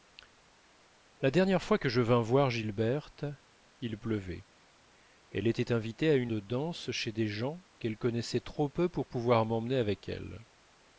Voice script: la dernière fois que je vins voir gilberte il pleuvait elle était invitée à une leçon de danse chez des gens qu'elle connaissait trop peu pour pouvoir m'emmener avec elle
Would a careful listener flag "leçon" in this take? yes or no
yes